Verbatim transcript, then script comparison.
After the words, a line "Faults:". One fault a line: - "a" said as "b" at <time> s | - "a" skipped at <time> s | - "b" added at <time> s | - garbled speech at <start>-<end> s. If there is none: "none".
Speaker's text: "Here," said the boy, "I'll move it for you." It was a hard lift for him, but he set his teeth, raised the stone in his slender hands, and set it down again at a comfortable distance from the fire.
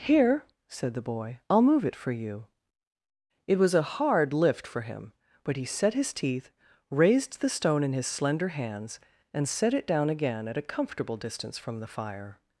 "Here," said the boy, "I'll move it for you." It was a hard lift for him, but he set his teeth, raised the stone in his slender hands, and set it down again at a comfortable distance from the fire.
Faults:
none